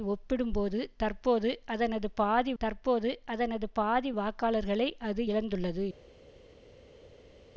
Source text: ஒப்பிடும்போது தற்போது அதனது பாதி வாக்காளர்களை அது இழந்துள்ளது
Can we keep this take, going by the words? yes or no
no